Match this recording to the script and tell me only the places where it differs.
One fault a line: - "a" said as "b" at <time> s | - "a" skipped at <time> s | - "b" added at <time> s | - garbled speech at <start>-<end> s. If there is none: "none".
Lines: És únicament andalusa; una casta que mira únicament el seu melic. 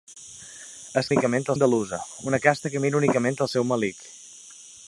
none